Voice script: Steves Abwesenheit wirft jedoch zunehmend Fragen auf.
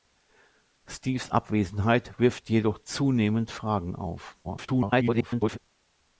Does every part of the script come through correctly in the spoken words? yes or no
no